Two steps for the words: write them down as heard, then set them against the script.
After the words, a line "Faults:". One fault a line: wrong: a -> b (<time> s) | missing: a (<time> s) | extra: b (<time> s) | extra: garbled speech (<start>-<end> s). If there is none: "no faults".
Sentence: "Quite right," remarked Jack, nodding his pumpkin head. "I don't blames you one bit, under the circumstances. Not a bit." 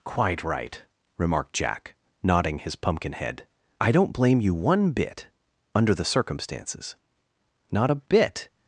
"Quite right," remarked Jack, nodding his pumpkin head. "I don't blame you one bit, under the circumstances. Not a bit."
Faults:
wrong: blames -> blame (4.1 s)